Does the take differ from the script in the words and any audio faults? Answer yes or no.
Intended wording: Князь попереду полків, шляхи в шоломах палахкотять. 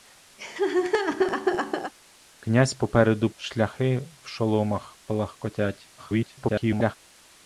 yes